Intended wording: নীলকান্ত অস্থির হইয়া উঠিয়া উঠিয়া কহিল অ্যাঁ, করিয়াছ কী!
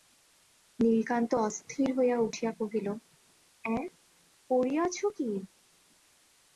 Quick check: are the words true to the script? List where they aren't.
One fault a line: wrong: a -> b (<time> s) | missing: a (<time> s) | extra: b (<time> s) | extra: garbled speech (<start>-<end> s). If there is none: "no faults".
missing: উঠিয়া (2.5 s)